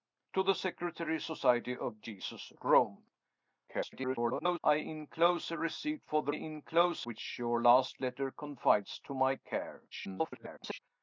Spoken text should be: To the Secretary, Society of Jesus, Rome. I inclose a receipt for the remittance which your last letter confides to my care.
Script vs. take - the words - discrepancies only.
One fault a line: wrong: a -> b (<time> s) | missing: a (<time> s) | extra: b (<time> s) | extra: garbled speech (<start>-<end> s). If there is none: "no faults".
extra: garbled speech (3.7-4.6 s)
wrong: remittance -> inclose (6.3 s)
extra: garbled speech (9.9-10.8 s)